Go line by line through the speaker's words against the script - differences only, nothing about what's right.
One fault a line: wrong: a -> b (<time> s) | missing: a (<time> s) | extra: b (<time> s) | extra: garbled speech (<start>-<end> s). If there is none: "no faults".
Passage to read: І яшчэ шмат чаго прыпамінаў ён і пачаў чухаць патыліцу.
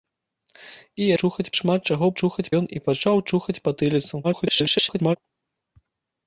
wrong: яшчэ -> чухаць (1.2 s)
wrong: прыпамінаў -> чухаць (2.2 s)
extra: garbled speech (4.2-5.2 s)